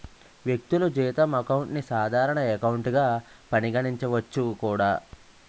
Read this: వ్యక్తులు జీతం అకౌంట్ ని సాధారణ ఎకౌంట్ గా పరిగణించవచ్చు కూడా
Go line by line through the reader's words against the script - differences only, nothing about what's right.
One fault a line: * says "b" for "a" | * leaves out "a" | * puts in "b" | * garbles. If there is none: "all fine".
all fine